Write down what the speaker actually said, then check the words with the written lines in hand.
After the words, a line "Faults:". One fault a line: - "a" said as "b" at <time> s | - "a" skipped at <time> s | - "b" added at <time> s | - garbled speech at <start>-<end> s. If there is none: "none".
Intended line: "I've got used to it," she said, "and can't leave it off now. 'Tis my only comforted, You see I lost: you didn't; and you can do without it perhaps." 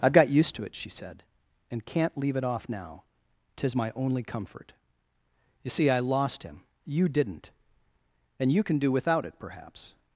"I've got used to it," she said, "and can't leave it off now. 'Tis my only comfort, You see I lost him: you didn't; and you can do without it perhaps."
Faults:
- "comforted" said as "comfort" at 4.2 s
- "him" added at 6.4 s